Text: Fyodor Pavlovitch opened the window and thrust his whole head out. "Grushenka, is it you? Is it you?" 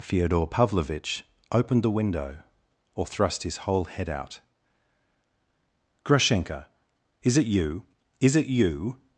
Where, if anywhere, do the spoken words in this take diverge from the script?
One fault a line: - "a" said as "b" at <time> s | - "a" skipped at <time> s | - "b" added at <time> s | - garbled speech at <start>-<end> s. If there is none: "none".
- "and" said as "or" at 3.0 s